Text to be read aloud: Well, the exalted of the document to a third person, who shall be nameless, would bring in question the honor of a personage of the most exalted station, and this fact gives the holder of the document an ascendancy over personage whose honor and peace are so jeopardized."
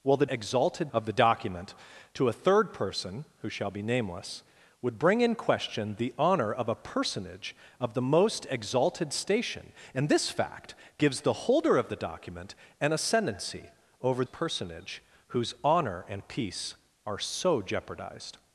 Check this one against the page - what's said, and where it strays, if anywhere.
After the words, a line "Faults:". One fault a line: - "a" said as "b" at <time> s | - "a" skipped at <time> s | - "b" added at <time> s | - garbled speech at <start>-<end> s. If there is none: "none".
Well, the exalted of the document to a third person, who shall be nameless, would bring in question the honor of a personage of the most exalted station, and this fact gives the holder of the document an ascendancy over personage whose honor and peace are so jeopardized."
Faults:
none